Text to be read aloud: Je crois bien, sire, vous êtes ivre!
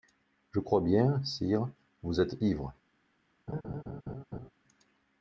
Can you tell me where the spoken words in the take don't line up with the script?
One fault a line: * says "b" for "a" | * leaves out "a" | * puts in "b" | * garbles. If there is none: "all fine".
all fine